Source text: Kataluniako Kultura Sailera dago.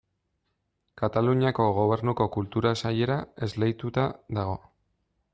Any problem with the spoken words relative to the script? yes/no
yes